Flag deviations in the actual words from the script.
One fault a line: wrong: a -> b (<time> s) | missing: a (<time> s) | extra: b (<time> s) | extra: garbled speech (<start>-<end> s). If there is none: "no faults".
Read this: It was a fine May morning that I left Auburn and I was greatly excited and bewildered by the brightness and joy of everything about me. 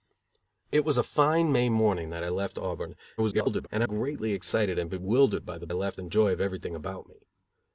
extra: garbled speech (3.2-3.7 s)
missing: was (3.9 s)
wrong: brightness -> left (5.7 s)